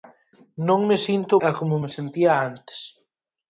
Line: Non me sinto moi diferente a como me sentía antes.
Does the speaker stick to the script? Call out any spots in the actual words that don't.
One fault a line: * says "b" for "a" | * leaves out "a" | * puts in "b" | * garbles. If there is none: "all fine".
* leaves out "moi diferente"